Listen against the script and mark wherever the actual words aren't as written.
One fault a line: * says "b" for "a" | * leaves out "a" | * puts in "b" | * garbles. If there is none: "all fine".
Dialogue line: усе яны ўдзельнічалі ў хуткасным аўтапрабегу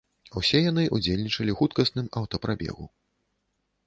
all fine